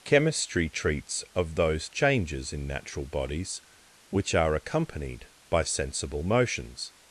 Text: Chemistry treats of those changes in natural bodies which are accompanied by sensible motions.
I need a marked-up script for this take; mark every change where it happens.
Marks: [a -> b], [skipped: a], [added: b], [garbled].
Chemistry treats of those changes in natural bodies which are accompanied by sensible motions.